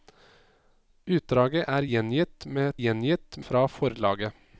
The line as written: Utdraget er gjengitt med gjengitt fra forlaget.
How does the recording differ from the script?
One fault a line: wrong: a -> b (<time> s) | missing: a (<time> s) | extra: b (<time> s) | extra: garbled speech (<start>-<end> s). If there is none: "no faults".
no faults